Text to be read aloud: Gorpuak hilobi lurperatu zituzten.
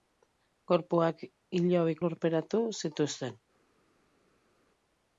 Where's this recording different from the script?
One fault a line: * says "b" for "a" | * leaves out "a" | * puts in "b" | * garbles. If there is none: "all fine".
all fine